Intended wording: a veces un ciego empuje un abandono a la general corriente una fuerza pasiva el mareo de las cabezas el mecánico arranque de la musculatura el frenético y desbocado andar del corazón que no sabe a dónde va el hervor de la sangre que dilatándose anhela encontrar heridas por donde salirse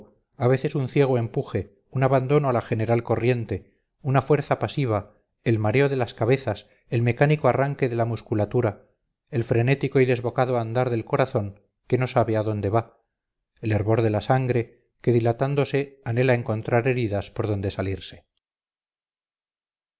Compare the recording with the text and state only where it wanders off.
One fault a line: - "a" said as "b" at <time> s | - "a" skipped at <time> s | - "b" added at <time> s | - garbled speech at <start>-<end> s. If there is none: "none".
none